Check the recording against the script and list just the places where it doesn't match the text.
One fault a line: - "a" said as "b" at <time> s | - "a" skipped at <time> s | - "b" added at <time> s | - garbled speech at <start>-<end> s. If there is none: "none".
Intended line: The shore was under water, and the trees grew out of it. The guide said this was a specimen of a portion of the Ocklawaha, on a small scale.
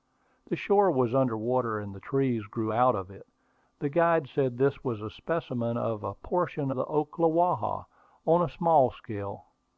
- "of" skipped at 6.7 s